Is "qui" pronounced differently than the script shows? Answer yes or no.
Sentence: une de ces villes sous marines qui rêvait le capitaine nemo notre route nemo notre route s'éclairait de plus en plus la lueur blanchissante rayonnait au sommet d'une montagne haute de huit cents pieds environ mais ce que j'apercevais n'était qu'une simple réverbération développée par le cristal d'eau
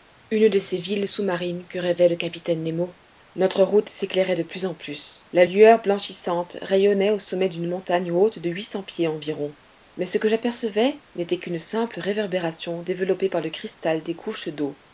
yes